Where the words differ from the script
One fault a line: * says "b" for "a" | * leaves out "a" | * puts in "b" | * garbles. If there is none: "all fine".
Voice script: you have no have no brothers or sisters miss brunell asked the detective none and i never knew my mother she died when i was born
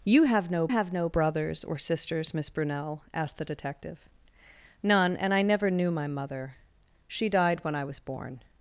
all fine